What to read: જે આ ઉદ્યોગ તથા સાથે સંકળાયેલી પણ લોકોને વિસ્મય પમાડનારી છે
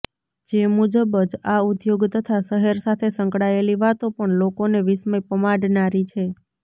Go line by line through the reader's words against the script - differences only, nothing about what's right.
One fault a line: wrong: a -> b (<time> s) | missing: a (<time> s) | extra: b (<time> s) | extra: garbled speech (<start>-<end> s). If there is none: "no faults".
extra: મુજબ જ (0.7 s)
extra: શહેર (2.5 s)
extra: વાતો (3.8 s)